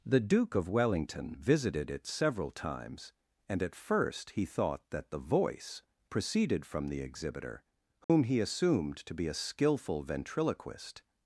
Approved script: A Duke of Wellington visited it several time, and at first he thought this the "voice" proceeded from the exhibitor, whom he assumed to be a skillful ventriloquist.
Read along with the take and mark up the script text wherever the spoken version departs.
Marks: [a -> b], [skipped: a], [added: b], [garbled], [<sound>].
[A -> The] Duke of Wellington visited it several [time, -> times] and at first he thought [this -> that] the "voice" proceeded from the exhibitor, whom [dropout] he assumed to be a skillful ventriloquist.